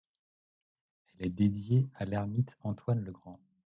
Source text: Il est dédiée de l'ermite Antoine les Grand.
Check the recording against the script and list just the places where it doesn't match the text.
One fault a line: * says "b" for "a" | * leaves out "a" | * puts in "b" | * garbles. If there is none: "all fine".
* says "Elle" for "Il"
* says "à" for "de"
* says "le" for "les"